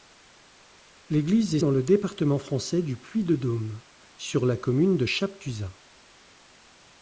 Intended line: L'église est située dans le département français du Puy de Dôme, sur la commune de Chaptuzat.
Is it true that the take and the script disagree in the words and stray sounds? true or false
true